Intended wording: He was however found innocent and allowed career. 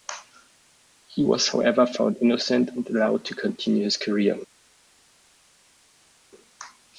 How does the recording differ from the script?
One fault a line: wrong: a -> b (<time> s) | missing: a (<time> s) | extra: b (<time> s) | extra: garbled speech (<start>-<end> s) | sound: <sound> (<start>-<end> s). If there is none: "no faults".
extra: to continue his (3.3 s)